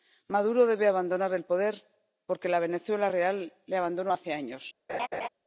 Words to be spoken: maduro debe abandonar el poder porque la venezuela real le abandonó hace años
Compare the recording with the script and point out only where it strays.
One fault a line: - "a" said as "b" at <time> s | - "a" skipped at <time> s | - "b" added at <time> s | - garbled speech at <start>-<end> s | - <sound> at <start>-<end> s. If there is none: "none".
- laugh at 4.9-5.3 s